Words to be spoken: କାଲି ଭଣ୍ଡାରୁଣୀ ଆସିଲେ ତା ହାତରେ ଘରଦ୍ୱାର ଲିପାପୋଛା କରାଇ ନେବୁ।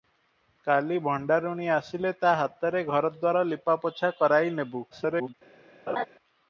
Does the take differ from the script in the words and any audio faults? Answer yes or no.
yes